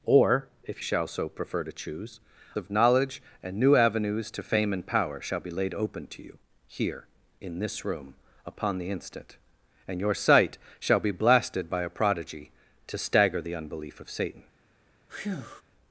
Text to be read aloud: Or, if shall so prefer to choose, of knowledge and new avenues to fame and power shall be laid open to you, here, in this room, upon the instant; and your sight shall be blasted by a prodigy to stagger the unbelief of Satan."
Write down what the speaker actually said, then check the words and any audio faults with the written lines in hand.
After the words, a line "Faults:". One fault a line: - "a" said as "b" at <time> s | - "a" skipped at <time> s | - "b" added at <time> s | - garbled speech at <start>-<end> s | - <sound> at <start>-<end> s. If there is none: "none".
Or, if shall so prefer to choose, of knowledge and new avenues to fame and power shall be laid open to you, here, in this room, upon the instant; and your sight shall be blasted by a prodigy to stagger the unbelief of Satan."
Faults:
- breath at 15.1-15.6 s